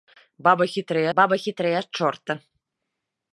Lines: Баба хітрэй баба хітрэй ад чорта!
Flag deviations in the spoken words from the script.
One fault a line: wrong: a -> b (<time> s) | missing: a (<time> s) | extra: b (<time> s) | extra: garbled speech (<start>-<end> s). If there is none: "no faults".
no faults